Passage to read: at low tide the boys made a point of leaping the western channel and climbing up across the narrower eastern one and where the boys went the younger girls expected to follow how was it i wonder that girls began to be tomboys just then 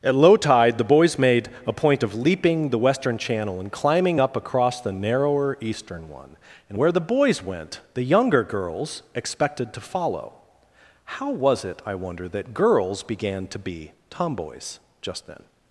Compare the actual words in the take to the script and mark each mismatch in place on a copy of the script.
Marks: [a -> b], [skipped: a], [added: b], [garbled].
at low tide the boys made a point of leaping the western channel and climbing up across the narrower eastern one and where the boys went the younger girls expected to follow how was it i wonder that girls began to be tomboys just then